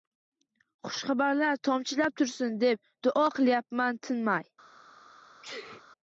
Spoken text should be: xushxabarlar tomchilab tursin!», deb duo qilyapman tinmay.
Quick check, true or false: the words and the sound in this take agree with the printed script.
false